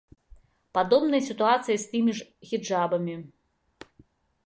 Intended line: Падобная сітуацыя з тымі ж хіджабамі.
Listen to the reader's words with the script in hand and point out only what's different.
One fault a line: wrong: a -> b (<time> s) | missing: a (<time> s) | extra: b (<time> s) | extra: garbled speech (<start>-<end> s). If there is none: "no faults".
no faults